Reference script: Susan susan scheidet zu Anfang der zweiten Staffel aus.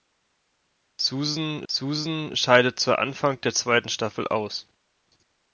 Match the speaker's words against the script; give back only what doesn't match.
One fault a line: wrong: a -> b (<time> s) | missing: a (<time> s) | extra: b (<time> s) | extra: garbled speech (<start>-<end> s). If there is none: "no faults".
no faults